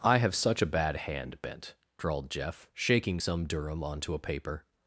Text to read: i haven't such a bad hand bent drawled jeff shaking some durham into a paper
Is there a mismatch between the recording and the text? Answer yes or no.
yes